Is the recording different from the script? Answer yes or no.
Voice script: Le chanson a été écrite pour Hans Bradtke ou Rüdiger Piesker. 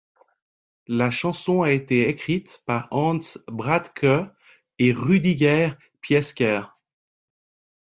yes